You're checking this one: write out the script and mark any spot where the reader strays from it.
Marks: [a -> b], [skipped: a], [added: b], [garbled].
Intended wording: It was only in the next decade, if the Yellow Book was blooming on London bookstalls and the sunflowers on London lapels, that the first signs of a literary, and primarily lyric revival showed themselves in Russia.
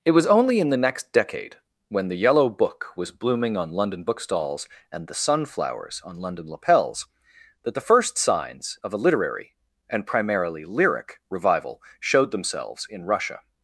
It was only in the next decade, [if -> when] the Yellow Book was blooming on London bookstalls and the sunflowers on London lapels, that the first signs of a literary, and primarily lyric revival showed themselves in Russia.